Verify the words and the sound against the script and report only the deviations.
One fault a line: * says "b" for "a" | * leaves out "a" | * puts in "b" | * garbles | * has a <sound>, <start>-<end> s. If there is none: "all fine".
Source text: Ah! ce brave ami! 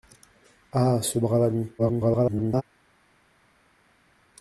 * garbles